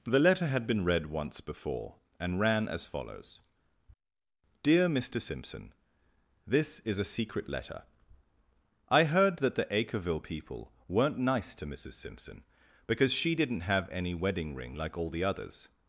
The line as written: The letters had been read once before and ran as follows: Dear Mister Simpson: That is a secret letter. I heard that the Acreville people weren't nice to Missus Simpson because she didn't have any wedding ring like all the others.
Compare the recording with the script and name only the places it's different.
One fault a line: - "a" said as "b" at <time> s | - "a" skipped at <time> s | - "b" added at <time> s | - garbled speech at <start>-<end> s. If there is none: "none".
- "letters" said as "letter" at 0.2 s
- "That" said as "This" at 6.5 s